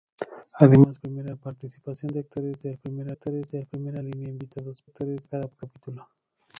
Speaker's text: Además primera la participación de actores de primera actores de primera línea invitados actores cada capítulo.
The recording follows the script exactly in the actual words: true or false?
true